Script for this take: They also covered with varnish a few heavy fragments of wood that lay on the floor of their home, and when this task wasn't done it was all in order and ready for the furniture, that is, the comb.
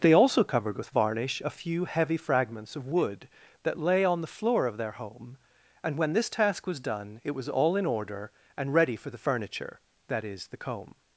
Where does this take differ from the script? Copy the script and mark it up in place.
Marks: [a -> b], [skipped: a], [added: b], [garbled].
They also covered with varnish a few heavy fragments of wood that lay on the floor of their home, and when this task [wasn't -> was] done it was all in order and ready for the furniture, that is, the comb.